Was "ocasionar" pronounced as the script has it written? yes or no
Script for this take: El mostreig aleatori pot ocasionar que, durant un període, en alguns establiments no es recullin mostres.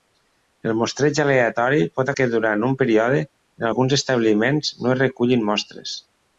no